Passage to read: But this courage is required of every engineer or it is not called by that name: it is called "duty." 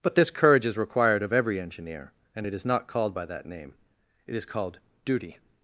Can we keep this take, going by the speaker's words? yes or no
no